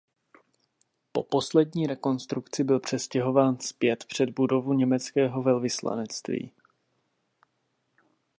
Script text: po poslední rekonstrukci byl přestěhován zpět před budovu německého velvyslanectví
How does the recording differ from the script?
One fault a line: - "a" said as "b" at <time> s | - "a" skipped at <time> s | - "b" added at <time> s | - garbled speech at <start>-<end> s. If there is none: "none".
none